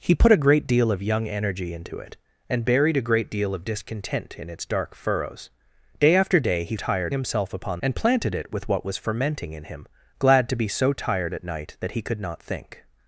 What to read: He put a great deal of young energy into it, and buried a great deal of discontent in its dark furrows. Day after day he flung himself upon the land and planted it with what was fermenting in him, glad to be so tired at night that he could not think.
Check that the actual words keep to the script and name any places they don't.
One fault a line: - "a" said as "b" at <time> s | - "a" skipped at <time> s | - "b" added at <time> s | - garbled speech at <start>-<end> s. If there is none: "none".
- "flung" said as "tired" at 6.7 s
- "the land" skipped at 7.8 s